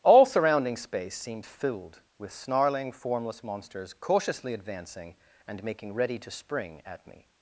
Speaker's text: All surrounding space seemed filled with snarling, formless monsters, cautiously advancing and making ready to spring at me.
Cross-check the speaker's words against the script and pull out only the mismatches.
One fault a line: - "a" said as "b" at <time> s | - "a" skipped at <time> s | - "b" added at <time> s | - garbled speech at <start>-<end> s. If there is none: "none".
none